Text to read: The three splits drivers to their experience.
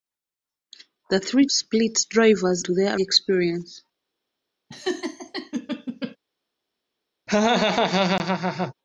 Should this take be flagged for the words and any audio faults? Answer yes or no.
yes